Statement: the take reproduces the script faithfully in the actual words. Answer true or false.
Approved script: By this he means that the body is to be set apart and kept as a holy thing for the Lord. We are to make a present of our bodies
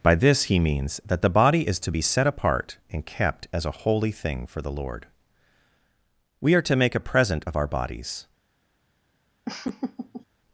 true